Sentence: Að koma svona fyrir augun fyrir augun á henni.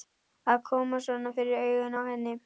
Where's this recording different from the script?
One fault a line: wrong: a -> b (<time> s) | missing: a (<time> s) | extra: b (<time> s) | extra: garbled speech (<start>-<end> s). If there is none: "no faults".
missing: fyrir augun (2.0 s)